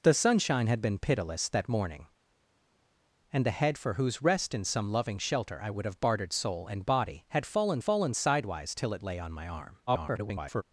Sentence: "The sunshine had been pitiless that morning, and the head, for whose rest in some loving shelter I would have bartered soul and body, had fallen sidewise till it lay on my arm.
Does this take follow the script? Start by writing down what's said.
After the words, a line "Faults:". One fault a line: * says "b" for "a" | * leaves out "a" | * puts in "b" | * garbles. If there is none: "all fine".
"The sunshine had been pitiless that morning, and the head, for whose rest in some loving shelter I would have bartered soul and body, had fallen fallen sidewise till it lay on my arm. [garbled]
Faults:
* puts in "fallen"
* garbles